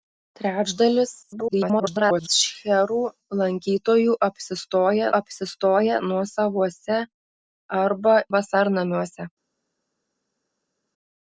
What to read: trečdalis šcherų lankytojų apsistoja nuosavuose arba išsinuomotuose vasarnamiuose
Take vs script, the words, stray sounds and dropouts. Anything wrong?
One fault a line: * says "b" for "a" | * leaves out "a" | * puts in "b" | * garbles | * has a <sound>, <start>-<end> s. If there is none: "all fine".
* garbles
* puts in "apsistoja"
* leaves out "išsinuomotuose"